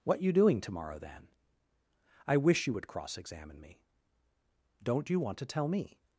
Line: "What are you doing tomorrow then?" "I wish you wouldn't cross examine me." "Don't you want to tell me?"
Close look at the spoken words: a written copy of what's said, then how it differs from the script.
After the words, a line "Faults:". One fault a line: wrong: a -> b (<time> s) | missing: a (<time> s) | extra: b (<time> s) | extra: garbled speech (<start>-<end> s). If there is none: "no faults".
"What you doing tomorrow then?" "I wish you would cross examine me." "Don't you want to tell me?"
Faults:
missing: are (0.2 s)
wrong: wouldn't -> would (2.7 s)